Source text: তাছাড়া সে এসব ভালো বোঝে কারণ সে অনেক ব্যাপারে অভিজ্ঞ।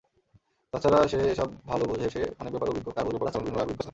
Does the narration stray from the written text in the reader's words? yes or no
yes